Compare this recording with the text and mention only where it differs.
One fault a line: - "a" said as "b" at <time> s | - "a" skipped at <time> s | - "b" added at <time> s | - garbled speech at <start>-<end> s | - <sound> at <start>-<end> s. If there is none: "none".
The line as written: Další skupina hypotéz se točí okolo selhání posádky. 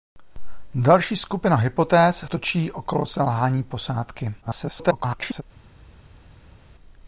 - "se" skipped at 2.2 s
- garbled speech at 4.4-5.4 s